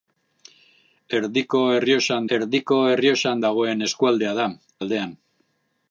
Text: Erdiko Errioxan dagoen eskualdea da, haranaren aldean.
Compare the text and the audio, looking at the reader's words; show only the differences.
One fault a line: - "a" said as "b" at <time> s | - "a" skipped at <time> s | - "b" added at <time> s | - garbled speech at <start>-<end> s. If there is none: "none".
- "erdiko Errioxan" added at 2.4 s
- "haranaren" skipped at 4.5 s